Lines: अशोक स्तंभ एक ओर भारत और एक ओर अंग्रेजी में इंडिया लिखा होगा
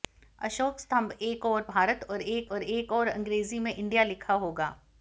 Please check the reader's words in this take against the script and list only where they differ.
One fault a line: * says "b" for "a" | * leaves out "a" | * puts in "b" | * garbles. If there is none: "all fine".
* puts in "और एक"